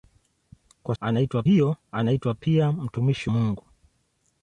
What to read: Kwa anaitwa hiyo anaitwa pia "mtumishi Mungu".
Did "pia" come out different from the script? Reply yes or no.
no